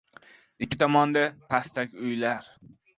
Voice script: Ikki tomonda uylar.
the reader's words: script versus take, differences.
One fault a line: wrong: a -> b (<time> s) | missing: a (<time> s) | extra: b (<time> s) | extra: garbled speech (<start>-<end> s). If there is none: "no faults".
extra: pastak (1.5 s)